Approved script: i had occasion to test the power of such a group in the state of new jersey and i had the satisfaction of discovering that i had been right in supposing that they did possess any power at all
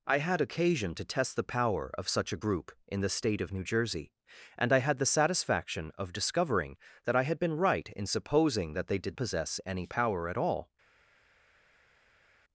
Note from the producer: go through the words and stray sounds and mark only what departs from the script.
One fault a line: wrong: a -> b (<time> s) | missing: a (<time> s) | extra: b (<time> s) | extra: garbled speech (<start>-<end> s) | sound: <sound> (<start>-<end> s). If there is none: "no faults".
no faults